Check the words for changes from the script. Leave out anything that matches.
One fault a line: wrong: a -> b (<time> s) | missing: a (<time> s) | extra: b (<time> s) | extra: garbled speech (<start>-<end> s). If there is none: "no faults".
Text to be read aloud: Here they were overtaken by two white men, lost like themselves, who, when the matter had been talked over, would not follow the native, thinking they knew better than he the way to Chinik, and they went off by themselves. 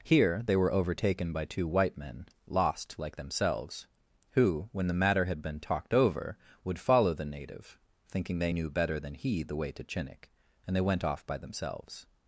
missing: not (6.8 s)